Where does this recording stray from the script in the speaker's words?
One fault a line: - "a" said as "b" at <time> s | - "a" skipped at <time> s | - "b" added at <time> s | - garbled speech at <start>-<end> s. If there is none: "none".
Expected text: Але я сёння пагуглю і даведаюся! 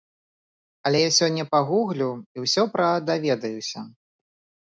- "ўсё пра" added at 2.4 s